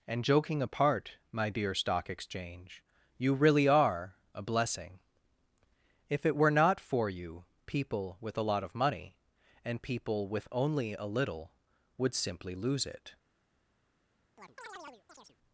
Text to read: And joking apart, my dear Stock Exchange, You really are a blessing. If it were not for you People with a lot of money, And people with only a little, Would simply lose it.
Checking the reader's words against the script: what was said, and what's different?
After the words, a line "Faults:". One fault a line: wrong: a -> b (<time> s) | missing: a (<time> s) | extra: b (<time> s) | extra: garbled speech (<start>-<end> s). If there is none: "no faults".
And joking apart, my dear Stock Exchange, You really are a blessing. If it were not for you People with a lot of money, And people with only a little, Would simply lose it.
Faults:
no faults